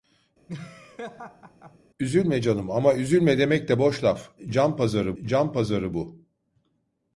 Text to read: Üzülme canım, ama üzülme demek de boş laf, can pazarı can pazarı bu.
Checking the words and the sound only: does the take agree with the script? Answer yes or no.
no